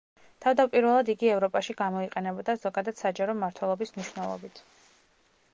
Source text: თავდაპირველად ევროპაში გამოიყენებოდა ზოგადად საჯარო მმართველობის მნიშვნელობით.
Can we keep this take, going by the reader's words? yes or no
no